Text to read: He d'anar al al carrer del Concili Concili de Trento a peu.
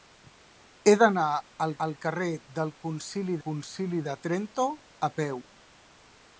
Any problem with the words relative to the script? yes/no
no